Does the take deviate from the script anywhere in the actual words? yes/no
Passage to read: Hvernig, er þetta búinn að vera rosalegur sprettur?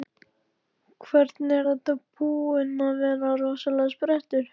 no